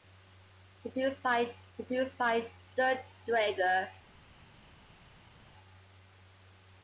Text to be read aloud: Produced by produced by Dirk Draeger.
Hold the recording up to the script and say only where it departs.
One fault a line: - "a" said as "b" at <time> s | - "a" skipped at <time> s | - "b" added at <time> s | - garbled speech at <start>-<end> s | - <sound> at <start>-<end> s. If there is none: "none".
none